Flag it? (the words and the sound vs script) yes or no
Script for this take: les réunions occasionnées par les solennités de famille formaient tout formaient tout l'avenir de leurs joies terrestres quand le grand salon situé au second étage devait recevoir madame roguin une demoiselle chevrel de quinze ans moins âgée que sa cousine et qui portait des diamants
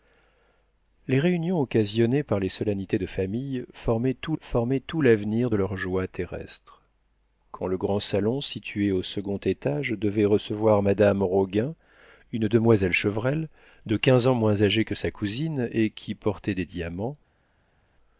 no